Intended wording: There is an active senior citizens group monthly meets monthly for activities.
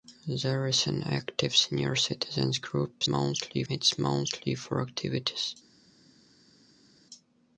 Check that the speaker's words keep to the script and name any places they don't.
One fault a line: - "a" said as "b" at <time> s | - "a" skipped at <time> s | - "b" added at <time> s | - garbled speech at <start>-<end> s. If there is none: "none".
none